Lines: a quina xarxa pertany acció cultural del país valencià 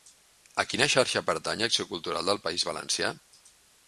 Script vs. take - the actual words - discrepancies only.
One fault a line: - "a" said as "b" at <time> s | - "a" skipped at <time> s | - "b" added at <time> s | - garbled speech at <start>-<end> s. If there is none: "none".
none